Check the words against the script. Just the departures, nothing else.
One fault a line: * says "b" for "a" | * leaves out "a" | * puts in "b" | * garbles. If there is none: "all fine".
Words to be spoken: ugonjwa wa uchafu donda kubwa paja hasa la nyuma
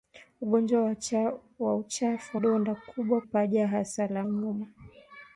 all fine